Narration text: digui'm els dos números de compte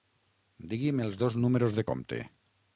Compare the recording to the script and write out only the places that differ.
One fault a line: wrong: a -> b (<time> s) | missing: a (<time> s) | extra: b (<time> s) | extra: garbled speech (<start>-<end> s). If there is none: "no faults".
no faults